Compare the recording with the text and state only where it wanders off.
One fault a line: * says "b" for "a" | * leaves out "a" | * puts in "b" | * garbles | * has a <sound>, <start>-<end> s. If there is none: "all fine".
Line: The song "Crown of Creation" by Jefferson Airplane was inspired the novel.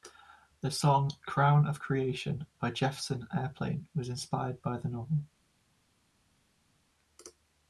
* puts in "by"